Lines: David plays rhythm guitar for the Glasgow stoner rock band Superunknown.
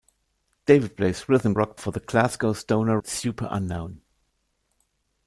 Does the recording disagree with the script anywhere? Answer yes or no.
yes